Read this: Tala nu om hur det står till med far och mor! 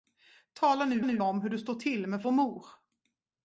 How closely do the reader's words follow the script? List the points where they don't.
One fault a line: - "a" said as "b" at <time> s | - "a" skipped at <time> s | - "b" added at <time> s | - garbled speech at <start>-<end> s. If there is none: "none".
- "nu" added at 1.0 s
- "far" skipped at 2.2 s